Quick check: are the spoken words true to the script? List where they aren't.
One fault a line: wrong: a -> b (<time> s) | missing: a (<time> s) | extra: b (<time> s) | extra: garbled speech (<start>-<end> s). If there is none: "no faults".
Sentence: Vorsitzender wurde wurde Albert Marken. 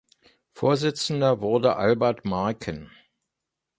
missing: wurde (1.8 s)